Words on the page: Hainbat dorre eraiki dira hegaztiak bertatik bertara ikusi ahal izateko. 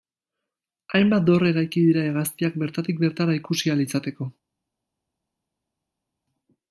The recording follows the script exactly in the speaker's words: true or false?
true